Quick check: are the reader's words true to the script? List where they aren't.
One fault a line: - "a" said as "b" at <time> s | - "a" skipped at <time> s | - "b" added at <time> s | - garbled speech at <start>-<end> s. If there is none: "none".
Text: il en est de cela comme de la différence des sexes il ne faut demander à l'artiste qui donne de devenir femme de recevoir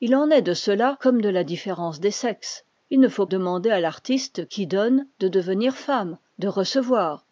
none